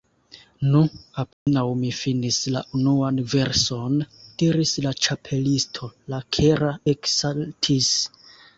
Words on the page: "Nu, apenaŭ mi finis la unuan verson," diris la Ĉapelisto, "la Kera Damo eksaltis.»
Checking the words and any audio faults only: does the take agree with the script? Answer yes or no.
no